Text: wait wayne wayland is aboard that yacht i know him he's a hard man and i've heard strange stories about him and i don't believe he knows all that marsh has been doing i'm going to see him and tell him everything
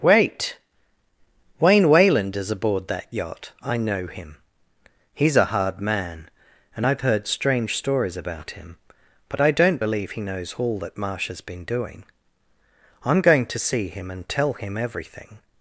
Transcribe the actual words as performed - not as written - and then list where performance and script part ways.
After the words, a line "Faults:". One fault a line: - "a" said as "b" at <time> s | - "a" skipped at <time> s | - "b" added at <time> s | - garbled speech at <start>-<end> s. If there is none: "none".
wait wayne wayland is aboard that yacht i know him he's a hard man and i've heard strange stories about him but i don't believe he knows all that marsh has been doing i'm going to see him and tell him everything
Faults:
- "and" said as "but" at 9.3 s